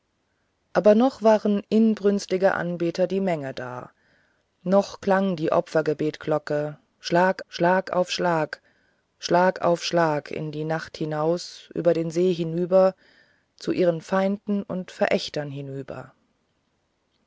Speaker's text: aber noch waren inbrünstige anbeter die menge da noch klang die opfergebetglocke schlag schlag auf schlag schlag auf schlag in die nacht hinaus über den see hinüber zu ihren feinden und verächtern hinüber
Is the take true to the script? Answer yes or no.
yes